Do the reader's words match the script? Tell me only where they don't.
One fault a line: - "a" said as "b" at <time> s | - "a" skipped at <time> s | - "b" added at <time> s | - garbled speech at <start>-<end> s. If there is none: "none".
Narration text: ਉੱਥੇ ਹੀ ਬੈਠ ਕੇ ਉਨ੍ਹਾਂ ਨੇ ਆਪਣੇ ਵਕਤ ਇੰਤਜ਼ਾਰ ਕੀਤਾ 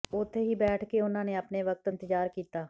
none